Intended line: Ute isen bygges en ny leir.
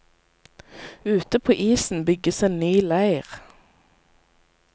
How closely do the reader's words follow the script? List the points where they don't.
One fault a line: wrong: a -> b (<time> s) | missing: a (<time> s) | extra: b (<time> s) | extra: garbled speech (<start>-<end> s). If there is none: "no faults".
extra: på (1.4 s)